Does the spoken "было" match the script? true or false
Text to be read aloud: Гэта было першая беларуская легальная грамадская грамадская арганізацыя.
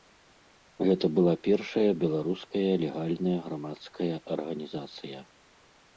false